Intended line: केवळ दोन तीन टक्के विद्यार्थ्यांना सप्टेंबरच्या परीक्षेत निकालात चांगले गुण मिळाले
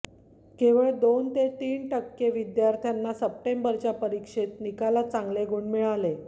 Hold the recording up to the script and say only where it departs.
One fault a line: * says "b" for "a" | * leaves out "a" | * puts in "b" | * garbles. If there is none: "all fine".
* puts in "ते"